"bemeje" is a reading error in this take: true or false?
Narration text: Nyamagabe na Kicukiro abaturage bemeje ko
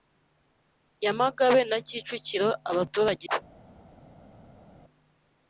true